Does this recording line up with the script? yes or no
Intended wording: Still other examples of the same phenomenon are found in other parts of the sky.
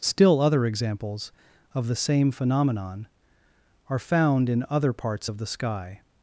yes